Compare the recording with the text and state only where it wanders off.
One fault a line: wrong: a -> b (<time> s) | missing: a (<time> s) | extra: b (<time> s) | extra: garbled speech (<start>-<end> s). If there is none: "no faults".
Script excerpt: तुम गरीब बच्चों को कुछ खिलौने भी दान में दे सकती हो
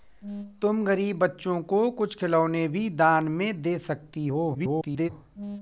extra: garbled speech (4.5-5.1 s)